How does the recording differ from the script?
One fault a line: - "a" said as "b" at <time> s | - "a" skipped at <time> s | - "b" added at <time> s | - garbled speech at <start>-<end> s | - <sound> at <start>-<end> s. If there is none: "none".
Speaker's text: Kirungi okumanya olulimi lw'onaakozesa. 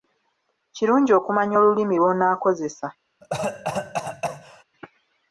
- cough at 3.2-4.6 s